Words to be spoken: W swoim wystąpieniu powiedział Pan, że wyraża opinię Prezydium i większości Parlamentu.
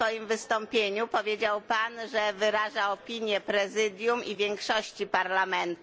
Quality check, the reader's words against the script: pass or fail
pass